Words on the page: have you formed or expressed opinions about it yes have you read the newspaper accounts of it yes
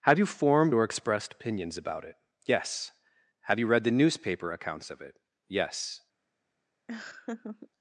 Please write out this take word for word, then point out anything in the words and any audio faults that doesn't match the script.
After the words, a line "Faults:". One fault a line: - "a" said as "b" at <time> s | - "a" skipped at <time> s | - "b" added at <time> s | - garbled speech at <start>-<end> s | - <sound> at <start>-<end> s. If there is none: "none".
have you formed or expressed opinions about it yes have you read the newspaper accounts of it yes
Faults:
- laugh at 6.9-7.7 s